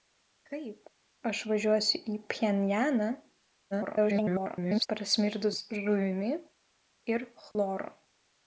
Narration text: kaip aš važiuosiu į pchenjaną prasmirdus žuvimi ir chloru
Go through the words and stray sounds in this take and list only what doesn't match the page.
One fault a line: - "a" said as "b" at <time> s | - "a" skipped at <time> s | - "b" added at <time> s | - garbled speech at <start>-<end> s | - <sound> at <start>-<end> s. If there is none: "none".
- garbled speech at 3.7-4.9 s
- dropout at 7.5-7.5 s